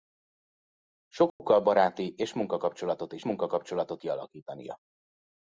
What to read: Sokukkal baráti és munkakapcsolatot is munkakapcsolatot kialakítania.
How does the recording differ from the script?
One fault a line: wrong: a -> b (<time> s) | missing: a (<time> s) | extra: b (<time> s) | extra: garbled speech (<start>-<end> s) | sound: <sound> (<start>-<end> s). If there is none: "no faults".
sound: dropout (1.3-1.4 s)